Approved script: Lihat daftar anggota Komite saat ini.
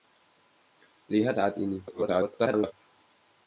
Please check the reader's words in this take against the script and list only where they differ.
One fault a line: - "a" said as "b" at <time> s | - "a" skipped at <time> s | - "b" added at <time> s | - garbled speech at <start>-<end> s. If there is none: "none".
- "daftar anggota Komite" skipped at 1.4 s
- garbled speech at 1.9-2.7 s